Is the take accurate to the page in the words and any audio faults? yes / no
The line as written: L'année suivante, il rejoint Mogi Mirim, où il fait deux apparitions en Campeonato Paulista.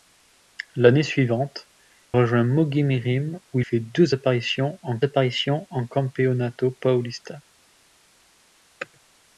no